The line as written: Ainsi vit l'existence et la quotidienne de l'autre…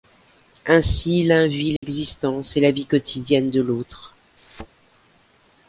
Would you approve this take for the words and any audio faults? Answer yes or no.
no